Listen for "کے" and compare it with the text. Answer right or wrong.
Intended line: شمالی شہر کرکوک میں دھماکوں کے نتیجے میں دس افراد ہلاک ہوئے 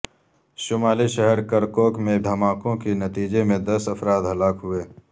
right